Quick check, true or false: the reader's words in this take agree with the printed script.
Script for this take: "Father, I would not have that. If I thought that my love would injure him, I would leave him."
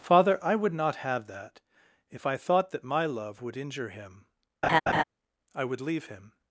true